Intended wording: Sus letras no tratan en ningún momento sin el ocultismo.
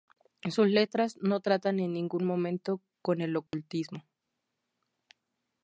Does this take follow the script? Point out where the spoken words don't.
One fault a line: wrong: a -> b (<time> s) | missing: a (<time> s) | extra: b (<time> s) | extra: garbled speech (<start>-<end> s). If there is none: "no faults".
wrong: sin -> con (3.0 s)